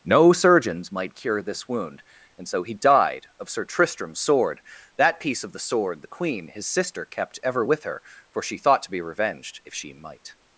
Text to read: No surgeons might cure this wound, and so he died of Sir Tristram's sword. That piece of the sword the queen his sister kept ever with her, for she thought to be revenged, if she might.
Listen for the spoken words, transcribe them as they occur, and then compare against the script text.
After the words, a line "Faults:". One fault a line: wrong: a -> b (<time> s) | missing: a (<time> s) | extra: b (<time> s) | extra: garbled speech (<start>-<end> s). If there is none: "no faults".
No surgeons might cure this wound, and so he died of Sir Tristram's sword. That piece of the sword the queen his sister kept ever with her, for she thought to be revenged, if she might.
Faults:
no faults